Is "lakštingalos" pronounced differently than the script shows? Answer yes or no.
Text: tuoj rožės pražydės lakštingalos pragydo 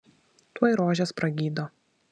yes